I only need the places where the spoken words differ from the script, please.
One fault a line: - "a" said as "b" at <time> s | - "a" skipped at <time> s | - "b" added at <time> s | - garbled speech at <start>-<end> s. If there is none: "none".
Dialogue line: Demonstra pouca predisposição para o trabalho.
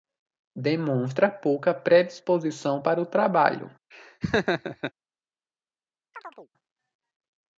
none